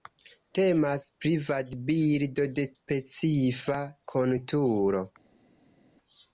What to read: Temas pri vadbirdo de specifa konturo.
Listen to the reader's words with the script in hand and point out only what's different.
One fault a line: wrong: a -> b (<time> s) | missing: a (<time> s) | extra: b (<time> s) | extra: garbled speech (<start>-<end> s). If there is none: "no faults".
no faults